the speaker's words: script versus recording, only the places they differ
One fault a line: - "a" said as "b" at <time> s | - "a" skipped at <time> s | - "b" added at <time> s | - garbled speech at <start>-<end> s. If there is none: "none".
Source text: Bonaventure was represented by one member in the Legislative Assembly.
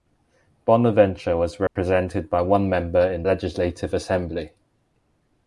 - "the" skipped at 3.2 s